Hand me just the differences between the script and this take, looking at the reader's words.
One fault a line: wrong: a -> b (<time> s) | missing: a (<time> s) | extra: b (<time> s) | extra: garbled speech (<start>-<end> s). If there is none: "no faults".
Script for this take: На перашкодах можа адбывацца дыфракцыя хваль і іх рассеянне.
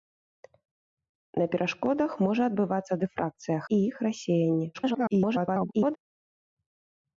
missing: хваль (3.6 s)
extra: garbled speech (4.7-6.0 s)